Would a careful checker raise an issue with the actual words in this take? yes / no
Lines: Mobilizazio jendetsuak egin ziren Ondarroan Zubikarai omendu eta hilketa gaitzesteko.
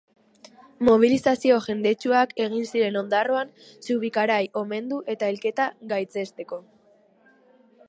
no